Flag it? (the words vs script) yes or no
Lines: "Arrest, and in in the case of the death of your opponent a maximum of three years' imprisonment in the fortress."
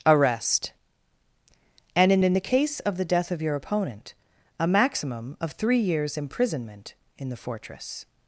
no